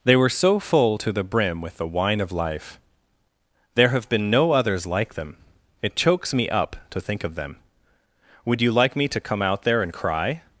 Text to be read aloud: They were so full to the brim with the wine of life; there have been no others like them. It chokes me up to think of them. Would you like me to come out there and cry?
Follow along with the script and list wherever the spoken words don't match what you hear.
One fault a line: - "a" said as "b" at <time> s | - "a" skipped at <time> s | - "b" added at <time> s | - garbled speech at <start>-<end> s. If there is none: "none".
none